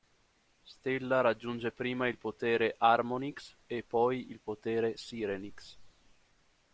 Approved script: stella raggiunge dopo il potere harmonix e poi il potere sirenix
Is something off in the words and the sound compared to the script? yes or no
yes